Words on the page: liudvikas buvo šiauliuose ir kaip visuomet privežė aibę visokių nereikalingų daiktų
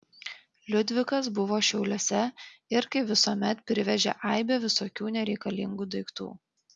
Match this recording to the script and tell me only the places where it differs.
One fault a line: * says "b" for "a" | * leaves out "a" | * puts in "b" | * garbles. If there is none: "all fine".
all fine